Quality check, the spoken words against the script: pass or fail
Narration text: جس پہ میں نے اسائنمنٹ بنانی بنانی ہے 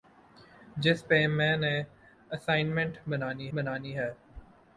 pass